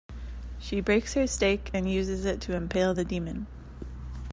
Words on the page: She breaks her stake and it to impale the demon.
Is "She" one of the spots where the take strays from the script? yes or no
no